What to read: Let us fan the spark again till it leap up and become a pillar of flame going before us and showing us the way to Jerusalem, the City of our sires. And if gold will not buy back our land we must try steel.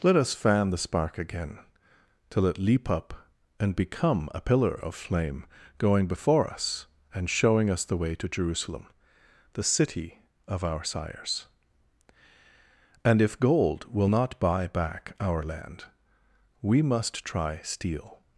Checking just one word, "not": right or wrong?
right